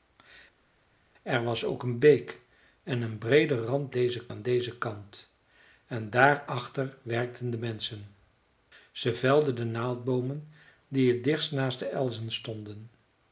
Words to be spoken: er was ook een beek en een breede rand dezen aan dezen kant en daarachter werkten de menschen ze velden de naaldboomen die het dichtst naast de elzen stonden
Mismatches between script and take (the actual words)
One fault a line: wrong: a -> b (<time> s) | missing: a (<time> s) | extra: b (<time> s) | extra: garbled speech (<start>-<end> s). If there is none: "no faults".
no faults